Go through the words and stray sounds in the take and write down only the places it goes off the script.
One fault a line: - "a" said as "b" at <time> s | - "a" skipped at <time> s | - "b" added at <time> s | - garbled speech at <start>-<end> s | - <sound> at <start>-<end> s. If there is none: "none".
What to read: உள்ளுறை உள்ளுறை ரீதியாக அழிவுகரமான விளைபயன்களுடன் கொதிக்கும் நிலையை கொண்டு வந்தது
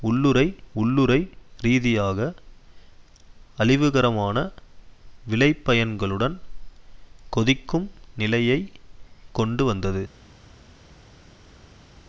none